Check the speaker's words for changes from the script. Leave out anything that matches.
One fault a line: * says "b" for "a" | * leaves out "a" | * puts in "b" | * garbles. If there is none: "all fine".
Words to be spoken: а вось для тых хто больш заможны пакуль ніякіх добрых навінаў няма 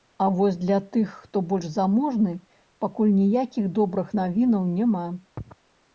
all fine